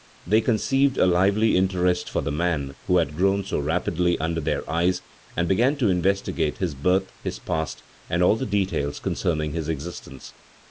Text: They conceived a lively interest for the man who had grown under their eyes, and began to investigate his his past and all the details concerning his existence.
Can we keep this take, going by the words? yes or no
no